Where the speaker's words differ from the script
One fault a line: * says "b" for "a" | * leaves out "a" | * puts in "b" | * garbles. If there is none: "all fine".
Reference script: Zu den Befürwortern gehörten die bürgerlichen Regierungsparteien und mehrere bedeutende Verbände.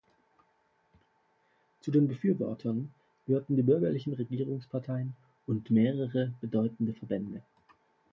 all fine